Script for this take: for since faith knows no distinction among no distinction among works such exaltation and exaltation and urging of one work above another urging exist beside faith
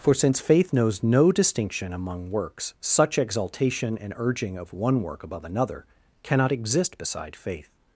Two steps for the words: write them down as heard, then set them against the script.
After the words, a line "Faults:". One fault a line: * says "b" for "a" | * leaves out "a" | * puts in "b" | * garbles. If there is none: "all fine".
for since faith knows no distinction among works such exaltation and urging of one work above another cannot exist beside faith
Faults:
* leaves out "no distinction among"
* leaves out "exaltation and"
* says "cannot" for "urging"